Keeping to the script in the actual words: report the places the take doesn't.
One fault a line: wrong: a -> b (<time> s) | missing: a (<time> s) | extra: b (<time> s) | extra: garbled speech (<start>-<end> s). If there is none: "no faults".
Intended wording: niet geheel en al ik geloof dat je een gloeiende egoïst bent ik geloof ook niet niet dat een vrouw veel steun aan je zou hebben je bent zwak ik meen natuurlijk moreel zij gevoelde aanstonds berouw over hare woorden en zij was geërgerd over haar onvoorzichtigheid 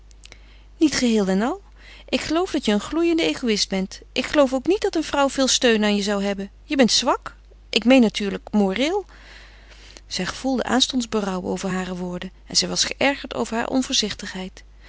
missing: niet (4.8 s)